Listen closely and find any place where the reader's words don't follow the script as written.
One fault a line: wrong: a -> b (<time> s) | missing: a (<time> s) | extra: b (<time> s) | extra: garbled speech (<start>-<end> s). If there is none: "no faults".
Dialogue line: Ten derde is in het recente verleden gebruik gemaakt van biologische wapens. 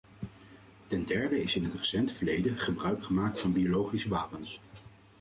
no faults